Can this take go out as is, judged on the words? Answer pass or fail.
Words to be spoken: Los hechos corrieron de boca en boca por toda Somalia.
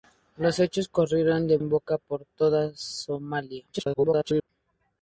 fail